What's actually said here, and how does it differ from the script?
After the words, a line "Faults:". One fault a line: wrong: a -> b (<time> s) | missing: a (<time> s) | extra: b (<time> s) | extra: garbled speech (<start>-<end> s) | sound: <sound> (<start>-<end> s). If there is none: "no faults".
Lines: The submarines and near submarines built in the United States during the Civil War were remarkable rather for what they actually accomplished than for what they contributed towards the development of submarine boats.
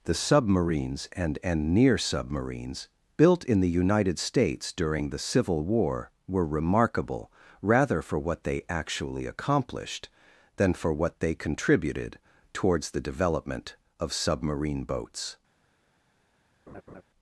The submarines and and near submarines built in the United States during the Civil War were remarkable rather for what they actually accomplished than for what they contributed towards the development of submarine boats.
Faults:
extra: and (1.4 s)
sound: laugh (16.7-17.0 s)